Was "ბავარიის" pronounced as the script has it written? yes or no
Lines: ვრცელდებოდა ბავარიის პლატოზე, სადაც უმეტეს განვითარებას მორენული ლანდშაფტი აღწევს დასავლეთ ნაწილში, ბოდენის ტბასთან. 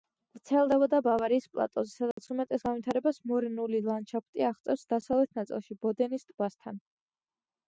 yes